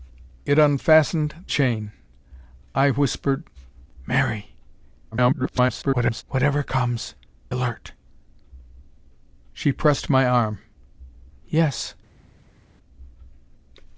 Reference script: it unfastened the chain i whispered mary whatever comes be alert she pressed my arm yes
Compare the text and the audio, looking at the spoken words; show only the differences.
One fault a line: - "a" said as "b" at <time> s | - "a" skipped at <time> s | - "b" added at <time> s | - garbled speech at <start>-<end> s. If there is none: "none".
- "the" skipped at 1.5 s
- garbled speech at 5.1-6.2 s
- "be" skipped at 7.1 s